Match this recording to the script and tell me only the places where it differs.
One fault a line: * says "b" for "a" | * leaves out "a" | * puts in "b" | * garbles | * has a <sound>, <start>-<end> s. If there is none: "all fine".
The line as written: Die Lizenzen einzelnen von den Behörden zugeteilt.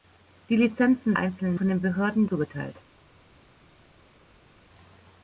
all fine